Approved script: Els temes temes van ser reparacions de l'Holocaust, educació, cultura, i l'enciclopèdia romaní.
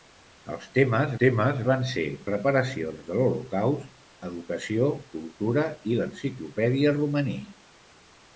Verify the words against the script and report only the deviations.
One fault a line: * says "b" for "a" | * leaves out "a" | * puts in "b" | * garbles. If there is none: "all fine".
all fine